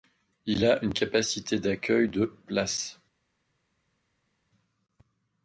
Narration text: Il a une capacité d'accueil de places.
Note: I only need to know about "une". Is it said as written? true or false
true